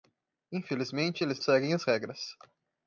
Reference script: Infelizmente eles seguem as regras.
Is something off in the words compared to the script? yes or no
no